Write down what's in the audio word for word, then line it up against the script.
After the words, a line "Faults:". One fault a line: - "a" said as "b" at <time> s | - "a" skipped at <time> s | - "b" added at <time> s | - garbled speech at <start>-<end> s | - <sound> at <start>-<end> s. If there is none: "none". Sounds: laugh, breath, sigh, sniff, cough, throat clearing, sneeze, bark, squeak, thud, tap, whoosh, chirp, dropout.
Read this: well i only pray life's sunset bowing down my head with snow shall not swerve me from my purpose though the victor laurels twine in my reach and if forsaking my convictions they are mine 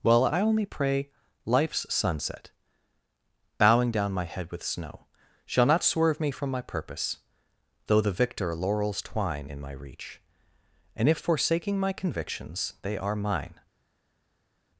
well i only pray life's sunset bowing down my head with snow shall not swerve me from my purpose though the victor laurels twine in my reach and if forsaking my convictions they are mine
Faults:
none